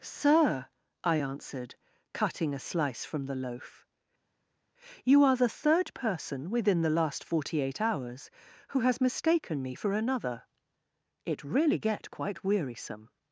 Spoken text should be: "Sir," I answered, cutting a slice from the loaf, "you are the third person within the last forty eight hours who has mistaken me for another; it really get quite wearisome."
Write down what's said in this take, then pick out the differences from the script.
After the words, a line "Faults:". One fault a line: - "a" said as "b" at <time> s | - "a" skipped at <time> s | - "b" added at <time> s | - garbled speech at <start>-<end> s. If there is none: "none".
"Sir," I answered, cutting a slice from the loaf, "you are the third person within the last forty eight hours who has mistaken me for another; it really get quite wearisome."
Faults:
none